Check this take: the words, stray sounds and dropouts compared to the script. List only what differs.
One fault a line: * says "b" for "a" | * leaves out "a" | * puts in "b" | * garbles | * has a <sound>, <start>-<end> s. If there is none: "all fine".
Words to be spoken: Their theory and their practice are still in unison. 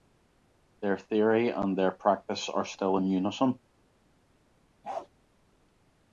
* has a bark, 4.8-5.1 s